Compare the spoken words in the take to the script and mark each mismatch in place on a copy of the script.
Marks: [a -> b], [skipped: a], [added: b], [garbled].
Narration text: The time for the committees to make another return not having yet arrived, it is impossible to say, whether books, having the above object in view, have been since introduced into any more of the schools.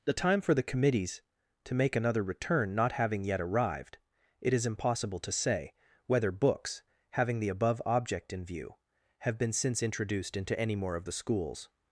The time for the committees to make another return not having yet arrived, it is impossible to say, whether books, having the above object in view, have been since introduced into any more of the schools.